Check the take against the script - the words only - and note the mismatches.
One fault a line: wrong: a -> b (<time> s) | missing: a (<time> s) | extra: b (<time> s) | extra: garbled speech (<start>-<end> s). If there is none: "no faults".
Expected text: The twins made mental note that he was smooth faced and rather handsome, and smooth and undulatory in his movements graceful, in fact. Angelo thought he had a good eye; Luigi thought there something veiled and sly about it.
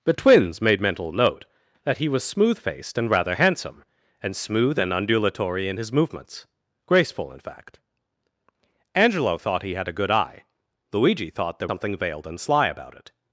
no faults